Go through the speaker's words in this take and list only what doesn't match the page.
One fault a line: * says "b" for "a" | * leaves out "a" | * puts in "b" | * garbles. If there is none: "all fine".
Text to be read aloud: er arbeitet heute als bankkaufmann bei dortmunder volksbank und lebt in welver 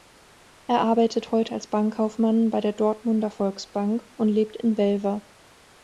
* puts in "der"